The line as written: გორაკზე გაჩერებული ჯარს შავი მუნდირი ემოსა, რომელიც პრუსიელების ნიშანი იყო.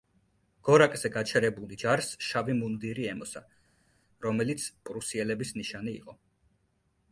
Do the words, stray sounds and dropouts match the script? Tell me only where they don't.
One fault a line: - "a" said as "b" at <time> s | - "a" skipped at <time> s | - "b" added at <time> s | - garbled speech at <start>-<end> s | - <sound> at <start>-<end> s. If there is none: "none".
none